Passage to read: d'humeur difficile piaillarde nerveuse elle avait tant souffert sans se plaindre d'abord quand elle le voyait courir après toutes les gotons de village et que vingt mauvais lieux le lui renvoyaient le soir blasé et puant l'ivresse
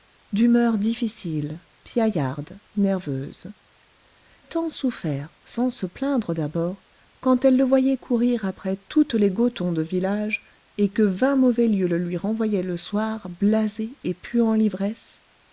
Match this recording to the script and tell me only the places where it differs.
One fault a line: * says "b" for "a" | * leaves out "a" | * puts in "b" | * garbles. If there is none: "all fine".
* leaves out "elle avait"